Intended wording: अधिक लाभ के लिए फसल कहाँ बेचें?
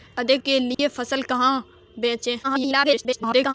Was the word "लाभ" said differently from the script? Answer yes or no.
yes